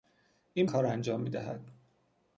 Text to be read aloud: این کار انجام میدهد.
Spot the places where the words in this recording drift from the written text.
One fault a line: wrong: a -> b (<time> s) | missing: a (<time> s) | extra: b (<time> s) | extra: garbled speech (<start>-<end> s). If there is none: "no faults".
no faults